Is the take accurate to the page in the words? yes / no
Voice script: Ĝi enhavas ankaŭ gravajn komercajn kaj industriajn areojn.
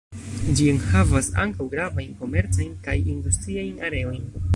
yes